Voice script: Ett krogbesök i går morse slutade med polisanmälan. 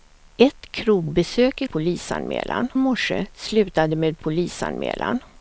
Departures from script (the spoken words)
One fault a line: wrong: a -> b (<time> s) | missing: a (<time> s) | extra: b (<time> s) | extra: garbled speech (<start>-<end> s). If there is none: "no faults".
wrong: går -> polisanmälan (1.7 s)